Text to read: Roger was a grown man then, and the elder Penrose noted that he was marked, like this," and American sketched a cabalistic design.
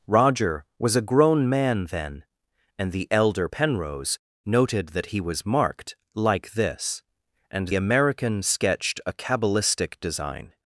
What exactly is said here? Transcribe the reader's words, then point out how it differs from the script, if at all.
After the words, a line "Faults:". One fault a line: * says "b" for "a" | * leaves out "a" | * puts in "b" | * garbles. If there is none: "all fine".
Roger was a grown man then, and the elder Penrose noted that he was marked, like this," and American sketched a cabalistic design.
Faults:
all fine